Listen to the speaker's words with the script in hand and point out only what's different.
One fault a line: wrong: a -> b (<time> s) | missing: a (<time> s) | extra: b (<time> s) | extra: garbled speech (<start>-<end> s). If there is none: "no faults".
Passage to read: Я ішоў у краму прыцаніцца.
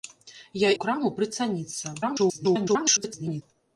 missing: ішоў (0.7 s)
extra: garbled speech (2.0-3.4 s)